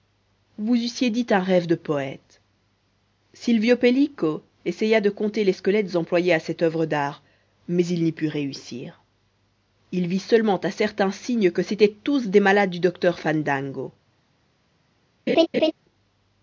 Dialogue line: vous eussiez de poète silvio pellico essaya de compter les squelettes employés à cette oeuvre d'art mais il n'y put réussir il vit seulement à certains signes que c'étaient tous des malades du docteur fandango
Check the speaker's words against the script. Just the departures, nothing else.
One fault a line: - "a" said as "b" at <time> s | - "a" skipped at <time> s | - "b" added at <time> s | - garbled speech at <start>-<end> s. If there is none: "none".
- "dit un rêve" added at 1.1 s